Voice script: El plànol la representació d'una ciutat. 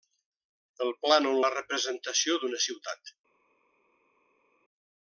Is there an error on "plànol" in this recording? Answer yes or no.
no